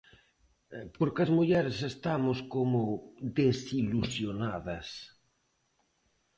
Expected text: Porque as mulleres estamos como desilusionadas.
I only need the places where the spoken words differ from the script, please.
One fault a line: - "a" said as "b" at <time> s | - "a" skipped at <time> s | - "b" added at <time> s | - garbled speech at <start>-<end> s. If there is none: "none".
none